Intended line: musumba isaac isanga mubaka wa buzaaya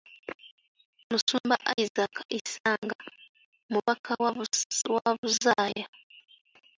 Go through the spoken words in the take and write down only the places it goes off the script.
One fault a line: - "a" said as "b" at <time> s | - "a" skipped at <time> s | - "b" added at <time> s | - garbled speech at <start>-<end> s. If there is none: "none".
none